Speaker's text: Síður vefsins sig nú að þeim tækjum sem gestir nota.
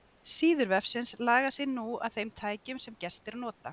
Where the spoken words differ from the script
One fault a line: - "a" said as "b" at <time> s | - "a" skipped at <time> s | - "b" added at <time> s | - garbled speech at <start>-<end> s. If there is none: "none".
- "laga" added at 1.3 s